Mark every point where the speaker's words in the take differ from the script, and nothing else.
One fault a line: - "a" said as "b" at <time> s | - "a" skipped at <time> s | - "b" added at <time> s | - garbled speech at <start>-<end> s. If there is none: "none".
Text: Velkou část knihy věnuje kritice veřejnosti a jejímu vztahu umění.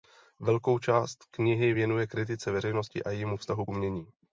none